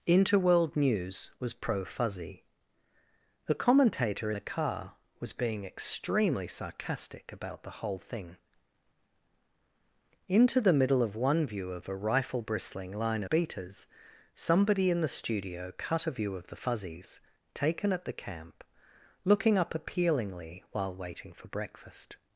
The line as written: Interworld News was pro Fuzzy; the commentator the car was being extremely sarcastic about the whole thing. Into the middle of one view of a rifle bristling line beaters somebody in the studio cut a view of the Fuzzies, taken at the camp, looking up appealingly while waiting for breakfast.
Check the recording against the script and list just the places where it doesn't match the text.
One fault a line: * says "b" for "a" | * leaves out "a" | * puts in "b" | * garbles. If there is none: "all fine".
all fine